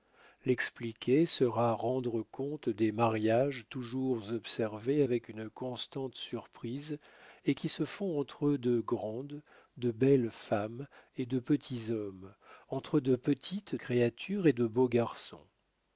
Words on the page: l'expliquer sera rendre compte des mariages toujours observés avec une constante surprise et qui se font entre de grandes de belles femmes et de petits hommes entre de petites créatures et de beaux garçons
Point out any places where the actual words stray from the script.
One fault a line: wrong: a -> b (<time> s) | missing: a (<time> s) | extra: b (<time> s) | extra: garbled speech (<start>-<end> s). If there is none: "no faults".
no faults